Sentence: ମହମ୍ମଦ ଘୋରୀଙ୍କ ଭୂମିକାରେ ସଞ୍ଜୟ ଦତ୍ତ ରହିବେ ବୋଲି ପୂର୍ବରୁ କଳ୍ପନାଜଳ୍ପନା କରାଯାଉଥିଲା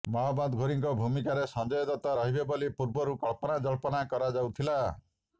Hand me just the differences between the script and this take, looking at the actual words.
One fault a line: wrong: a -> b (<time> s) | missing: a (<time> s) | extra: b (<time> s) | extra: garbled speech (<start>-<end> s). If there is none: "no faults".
no faults